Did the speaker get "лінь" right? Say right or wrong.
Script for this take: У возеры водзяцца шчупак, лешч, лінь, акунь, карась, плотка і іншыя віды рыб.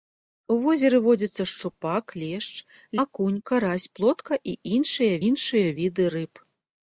wrong